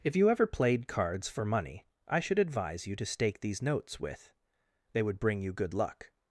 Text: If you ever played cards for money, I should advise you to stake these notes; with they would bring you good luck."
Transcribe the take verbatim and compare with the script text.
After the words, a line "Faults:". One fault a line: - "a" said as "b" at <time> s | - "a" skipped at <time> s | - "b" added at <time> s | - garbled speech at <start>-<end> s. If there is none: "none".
If you ever played cards for money, I should advise you to stake these notes; with they would bring you good luck."
Faults:
none